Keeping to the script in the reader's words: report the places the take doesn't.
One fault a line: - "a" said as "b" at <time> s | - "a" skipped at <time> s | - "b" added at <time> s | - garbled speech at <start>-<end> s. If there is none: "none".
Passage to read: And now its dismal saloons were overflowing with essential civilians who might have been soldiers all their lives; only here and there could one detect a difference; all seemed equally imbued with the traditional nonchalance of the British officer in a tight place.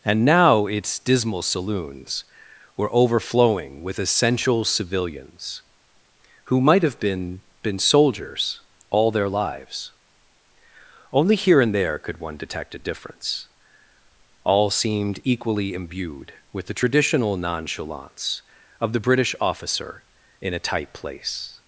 - "been" added at 7.6 s